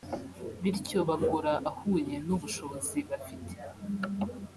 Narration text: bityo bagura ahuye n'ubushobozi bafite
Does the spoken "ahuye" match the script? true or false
true